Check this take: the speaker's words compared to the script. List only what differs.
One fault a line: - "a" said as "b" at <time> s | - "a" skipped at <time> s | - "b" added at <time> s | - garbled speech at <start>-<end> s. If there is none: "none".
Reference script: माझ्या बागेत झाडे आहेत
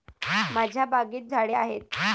none